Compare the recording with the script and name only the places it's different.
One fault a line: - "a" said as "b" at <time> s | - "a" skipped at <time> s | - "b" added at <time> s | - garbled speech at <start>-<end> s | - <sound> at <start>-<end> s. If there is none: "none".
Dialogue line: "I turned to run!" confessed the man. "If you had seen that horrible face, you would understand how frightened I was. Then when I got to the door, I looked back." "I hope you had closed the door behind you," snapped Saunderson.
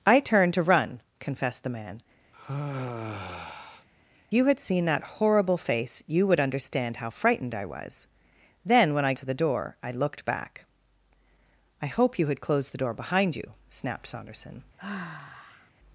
- "If" skipped at 2.0 s
- sigh at 2.3-3.9 s
- "got" skipped at 9.1 s
- sigh at 14.8-15.7 s